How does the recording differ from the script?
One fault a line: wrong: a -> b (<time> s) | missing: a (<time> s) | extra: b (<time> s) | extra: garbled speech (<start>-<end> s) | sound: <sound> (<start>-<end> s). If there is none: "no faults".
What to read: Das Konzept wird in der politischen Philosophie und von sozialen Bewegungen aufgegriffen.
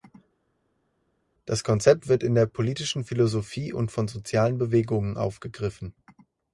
no faults